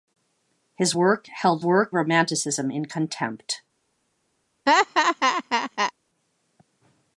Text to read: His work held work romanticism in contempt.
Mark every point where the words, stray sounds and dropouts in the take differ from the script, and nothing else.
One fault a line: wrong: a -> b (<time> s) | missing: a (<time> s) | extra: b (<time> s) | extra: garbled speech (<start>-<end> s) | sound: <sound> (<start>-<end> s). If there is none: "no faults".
sound: laugh (4.7-5.9 s)